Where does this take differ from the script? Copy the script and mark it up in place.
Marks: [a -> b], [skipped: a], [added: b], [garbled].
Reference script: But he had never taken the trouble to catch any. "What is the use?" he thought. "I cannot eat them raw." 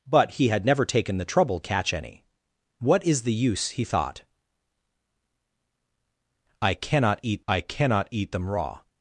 But he had never taken the trouble [skipped: to] catch any. "What is the use?" he thought. "I cannot eat [added: I cannot eat] them raw."